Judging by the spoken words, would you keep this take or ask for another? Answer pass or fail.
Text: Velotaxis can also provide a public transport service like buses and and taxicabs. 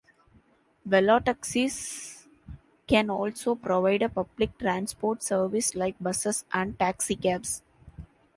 fail